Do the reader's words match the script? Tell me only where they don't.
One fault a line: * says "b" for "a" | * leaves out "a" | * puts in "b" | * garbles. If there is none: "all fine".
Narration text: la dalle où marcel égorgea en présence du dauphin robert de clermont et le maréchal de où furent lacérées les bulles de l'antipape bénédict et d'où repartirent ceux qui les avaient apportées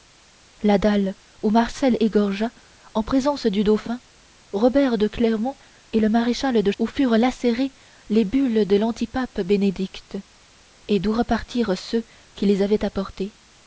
all fine